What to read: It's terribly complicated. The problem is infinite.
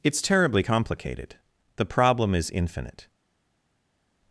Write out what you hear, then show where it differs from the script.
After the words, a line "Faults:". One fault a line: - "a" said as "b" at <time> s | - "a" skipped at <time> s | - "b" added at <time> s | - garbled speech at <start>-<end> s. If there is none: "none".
It's terribly complicated. The problem is infinite.
Faults:
none